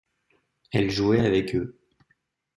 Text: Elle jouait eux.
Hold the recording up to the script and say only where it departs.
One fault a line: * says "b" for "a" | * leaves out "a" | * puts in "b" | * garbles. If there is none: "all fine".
* puts in "avec"